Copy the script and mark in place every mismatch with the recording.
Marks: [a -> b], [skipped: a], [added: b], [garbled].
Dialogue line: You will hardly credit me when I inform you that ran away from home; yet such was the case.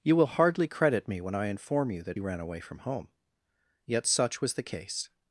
You will hardly credit me when I inform you that ran away from home; yet such was the case.